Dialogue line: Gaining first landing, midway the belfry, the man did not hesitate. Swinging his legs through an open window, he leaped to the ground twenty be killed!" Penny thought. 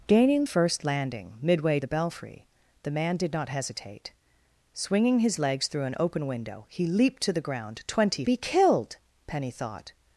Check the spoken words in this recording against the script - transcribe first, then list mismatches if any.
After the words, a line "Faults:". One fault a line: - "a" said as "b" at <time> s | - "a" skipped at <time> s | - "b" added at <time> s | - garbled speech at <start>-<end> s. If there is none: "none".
Gaining first landing, midway the belfry, the man did not hesitate. Swinging his legs through an open window, he leaped to the ground twenty be killed!" Penny thought.
Faults:
none